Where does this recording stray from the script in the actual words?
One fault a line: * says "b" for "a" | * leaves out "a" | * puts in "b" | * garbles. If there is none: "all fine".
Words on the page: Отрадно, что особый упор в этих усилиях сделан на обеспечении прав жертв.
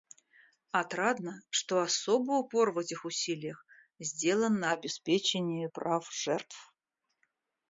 all fine